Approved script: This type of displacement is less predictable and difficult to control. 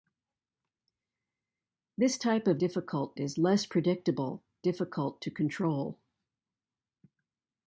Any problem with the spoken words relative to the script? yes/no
yes